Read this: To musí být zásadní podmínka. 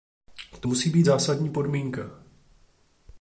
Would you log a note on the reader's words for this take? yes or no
no